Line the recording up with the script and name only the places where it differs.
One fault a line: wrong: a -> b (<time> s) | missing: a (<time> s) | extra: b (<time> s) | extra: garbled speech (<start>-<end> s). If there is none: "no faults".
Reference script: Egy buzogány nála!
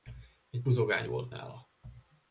extra: volt (1.1 s)